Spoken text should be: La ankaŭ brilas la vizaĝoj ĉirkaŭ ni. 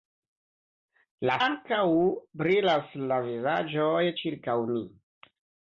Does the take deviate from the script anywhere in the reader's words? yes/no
no